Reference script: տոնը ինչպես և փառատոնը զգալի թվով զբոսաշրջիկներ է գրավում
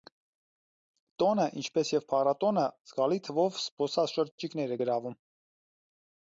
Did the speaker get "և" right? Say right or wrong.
right